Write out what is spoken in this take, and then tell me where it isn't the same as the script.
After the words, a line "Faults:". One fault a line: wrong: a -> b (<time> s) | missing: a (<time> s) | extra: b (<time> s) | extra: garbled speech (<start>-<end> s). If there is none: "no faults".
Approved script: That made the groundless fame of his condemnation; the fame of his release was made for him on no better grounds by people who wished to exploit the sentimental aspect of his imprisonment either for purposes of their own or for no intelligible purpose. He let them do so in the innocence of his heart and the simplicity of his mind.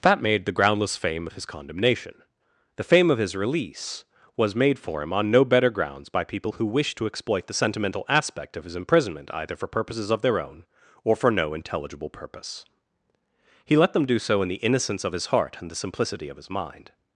That made the groundless fame of his condemnation; the fame of his release was made for him on no better grounds by people who wished to exploit the sentimental aspect of his imprisonment either for purposes of their own or for no intelligible purpose. He let them do so in the innocence of his heart and the simplicity of his mind.
Faults:
no faults